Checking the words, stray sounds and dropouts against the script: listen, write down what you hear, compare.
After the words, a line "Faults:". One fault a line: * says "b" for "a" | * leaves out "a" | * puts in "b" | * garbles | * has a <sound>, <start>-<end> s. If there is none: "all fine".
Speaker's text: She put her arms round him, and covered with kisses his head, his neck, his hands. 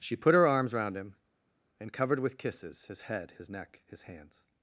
She put her arms round him, and covered with kisses his head, his neck, his hands.
Faults:
all fine